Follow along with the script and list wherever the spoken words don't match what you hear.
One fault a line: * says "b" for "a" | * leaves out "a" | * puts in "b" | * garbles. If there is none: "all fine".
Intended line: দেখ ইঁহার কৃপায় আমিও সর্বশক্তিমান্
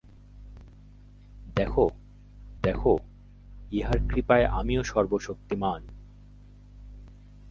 * puts in "দেখ"